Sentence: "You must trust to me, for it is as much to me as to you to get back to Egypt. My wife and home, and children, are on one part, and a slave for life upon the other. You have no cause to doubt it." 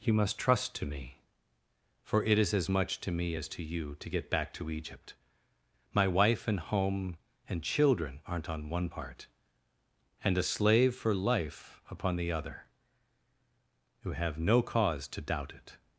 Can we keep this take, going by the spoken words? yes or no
no